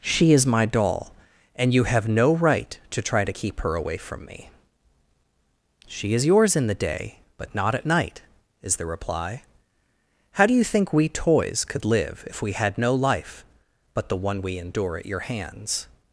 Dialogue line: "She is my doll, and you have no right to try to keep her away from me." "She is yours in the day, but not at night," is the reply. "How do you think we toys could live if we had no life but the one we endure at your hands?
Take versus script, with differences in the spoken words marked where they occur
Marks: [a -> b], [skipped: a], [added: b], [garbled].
"She is my doll, and you have no right to try to keep her away from me." "She is yours in the day, but not at night," is the reply. "How do you think we toys could live if we had no life but the one we endure at your hands?